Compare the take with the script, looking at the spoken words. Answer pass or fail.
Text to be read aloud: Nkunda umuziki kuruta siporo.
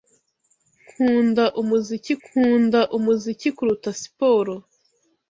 fail